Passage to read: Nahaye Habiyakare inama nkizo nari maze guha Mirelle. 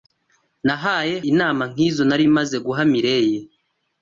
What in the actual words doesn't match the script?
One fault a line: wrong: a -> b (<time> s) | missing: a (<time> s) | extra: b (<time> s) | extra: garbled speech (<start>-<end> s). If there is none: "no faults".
missing: Habiyakare (1.1 s)